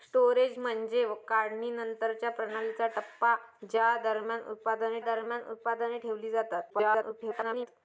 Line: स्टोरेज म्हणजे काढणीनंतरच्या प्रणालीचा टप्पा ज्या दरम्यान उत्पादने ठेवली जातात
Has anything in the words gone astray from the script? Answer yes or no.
yes